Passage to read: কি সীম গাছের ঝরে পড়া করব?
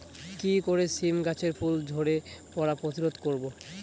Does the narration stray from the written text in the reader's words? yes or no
yes